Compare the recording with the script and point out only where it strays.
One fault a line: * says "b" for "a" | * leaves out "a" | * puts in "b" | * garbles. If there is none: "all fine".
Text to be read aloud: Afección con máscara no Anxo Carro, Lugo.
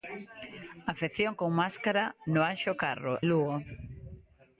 all fine